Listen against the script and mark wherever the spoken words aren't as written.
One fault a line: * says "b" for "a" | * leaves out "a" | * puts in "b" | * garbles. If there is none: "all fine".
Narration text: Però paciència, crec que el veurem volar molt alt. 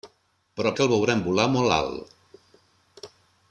* leaves out "paciència crec"